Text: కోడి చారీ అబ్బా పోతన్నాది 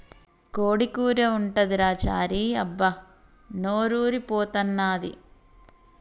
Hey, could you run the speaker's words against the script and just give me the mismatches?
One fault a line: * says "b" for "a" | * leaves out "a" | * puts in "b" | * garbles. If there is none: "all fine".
* puts in "కూర ఉంటదిరా"
* puts in "నోరూరి"